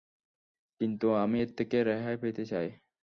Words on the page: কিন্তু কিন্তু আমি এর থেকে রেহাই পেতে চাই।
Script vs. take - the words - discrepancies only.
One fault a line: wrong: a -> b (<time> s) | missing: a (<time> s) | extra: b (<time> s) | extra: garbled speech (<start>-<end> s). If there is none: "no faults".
missing: কিন্তু (1.1 s)